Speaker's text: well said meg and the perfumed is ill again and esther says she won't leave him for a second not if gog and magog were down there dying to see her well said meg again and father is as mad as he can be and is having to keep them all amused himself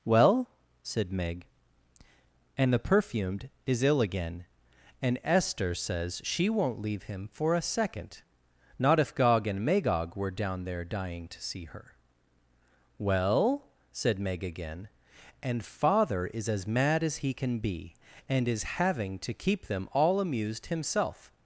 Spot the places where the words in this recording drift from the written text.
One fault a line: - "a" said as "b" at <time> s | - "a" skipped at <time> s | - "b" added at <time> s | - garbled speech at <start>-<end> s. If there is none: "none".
none